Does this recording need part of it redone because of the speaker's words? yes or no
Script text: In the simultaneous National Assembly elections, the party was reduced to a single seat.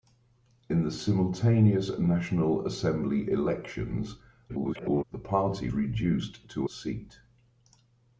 yes